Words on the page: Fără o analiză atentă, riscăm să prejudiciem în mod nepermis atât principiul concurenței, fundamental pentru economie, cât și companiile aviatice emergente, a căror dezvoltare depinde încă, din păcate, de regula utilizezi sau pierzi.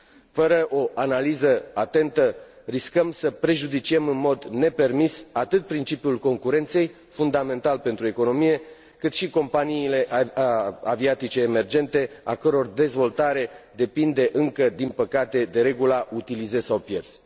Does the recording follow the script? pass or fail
pass